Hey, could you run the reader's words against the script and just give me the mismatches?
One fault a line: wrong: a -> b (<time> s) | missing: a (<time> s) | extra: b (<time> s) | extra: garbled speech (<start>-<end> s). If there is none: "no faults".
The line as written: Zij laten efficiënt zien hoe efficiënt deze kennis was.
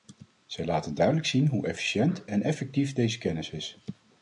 wrong: efficiënt -> duidelijk (0.9 s)
extra: en effectief (2.2 s)
wrong: was -> is (3.5 s)